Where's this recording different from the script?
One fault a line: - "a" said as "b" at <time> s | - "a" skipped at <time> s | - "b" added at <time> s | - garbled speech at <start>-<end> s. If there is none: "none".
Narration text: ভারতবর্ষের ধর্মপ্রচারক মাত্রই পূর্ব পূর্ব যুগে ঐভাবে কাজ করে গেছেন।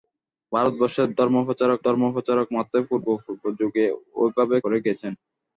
- "ধর্মপ্রচারক" added at 1.8 s
- "কাজ" skipped at 4.6 s